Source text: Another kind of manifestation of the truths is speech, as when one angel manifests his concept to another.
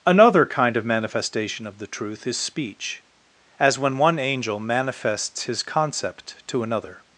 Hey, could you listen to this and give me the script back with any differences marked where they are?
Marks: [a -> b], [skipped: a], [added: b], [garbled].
Another kind of manifestation of the [truths -> truth] is speech, as when one angel manifests his concept to another.